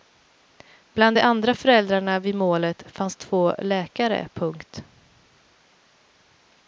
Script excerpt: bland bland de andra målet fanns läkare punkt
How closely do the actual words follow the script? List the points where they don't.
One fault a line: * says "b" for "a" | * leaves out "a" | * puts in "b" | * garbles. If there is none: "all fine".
* leaves out "bland"
* puts in "föräldrarna vid"
* puts in "två"